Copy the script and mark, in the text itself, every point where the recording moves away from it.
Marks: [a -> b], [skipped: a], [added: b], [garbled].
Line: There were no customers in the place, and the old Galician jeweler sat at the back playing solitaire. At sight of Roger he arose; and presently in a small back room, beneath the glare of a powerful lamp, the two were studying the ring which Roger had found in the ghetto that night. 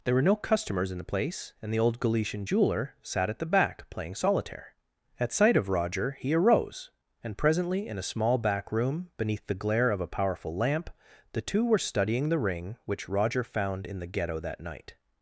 There were no customers in the place, and the old Galician jeweler sat at the back playing solitaire. At sight of Roger he arose; and presently in a small back room, beneath the glare of a powerful lamp, the two were studying the ring which Roger [skipped: had] found in the ghetto that night.